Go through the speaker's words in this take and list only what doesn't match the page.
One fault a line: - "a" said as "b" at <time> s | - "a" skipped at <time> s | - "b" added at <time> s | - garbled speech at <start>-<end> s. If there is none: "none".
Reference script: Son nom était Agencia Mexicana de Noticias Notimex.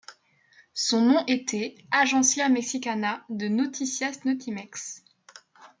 none